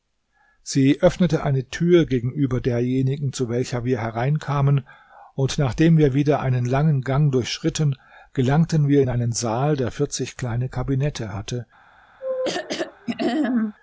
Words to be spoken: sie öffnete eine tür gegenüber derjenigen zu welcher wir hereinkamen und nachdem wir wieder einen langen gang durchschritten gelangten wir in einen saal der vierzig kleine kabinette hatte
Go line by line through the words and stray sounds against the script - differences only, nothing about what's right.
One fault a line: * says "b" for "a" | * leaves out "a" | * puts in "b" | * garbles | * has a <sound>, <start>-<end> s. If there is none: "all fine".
* has a throat clearing, 12.2-13.7 s